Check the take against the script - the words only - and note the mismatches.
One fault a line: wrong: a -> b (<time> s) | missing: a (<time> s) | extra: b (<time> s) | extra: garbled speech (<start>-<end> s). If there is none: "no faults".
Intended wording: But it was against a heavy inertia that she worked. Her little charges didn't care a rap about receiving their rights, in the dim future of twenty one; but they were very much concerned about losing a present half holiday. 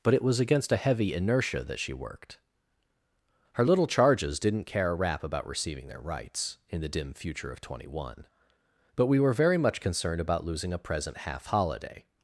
wrong: they -> we (9.1 s)